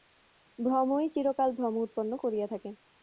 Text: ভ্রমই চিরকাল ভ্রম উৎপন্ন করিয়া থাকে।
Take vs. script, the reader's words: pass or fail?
pass